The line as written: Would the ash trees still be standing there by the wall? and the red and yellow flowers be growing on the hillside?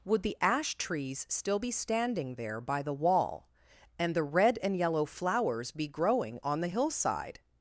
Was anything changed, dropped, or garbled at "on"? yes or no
no